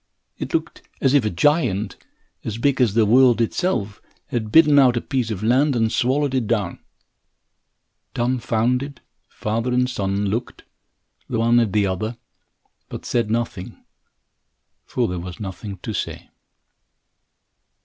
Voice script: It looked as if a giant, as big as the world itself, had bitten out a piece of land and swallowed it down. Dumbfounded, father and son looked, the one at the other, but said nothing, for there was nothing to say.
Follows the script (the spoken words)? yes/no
yes